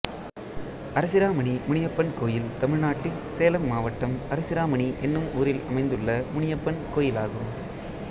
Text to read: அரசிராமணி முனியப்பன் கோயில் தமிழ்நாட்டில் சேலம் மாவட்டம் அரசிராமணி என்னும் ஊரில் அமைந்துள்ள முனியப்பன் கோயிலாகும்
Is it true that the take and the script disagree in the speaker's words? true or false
false